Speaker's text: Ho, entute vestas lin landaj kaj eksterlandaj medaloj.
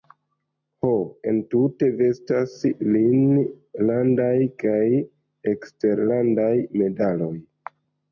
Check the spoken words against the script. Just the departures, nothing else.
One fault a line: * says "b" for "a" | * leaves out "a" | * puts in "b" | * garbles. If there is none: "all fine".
all fine